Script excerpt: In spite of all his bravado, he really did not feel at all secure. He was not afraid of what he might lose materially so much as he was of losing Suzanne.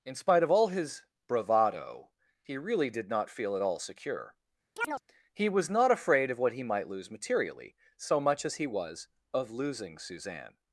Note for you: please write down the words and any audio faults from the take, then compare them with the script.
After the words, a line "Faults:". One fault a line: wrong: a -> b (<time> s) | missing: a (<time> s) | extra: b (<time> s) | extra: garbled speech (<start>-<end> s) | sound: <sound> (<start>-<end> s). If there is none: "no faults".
In spite of all his bravado, he really did not feel at all secure. He was not afraid of what he might lose materially so much as he was of losing Suzanne.
Faults:
sound: chirp (4.8-5.0 s)